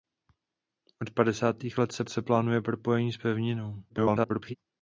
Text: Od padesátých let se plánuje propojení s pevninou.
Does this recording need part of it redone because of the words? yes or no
yes